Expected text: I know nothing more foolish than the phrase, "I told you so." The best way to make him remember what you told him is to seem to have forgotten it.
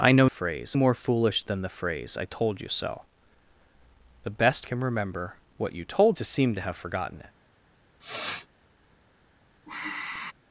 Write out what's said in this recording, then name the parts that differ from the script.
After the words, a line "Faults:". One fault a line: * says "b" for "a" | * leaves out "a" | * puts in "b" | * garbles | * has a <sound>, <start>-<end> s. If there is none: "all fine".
I know phrase more foolish than the phrase, "I told you so." The best him remember what you told to seem to have forgotten it.
Faults:
* says "phrase" for "nothing"
* leaves out "way to make"
* leaves out "him is"
* has a sniff, 8.0-8.5 s
* has a sigh, 9.7-10.3 s